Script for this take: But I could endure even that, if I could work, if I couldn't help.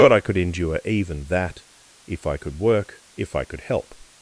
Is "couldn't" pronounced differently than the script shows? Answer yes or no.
yes